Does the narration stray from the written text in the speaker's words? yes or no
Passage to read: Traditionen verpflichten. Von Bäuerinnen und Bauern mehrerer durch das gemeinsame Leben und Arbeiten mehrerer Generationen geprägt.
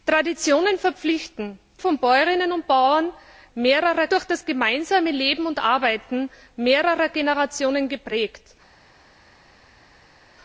no